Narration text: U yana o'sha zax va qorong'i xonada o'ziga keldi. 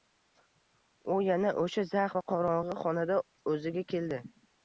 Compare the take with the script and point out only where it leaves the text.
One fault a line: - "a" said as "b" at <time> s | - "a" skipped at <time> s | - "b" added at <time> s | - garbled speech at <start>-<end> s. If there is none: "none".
none